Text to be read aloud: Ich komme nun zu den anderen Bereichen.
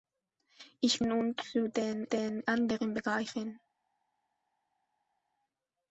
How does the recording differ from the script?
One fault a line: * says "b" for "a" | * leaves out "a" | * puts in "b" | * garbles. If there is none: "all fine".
* leaves out "komme"
* puts in "den"